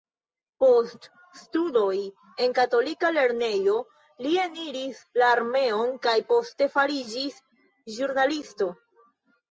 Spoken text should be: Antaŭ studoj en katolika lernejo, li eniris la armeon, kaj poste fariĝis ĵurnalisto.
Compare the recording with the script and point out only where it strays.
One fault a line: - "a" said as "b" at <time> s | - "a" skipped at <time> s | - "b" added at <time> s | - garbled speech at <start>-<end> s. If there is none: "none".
- "Antaŭ" said as "Post" at 0.6 s